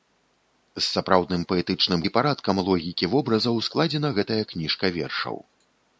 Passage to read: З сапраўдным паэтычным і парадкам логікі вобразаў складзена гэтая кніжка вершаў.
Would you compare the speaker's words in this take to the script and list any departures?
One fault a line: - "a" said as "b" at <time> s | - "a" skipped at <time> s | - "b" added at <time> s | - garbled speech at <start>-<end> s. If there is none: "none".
none